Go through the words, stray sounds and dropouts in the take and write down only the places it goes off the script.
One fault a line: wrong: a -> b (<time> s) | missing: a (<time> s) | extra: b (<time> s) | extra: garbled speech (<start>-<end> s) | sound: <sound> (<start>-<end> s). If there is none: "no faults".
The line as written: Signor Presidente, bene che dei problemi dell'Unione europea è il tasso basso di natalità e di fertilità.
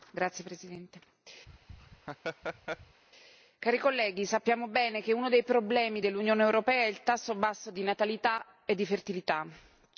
sound: laugh (1.5-3.0 s)
extra: onorevoli colleghi sappiamo (3.6 s)
extra: uno (5.1 s)